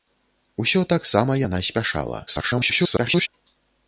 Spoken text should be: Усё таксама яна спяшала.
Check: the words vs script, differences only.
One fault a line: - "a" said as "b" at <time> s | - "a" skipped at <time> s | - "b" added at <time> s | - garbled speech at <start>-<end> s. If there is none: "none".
- garbled speech at 2.3-3.3 s